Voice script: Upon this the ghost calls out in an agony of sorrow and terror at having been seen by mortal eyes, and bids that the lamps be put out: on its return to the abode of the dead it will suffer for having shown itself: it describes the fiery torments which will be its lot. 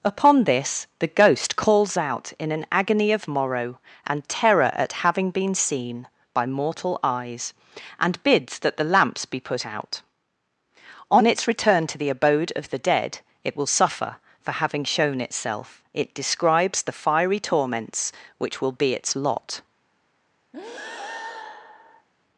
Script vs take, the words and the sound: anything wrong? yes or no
yes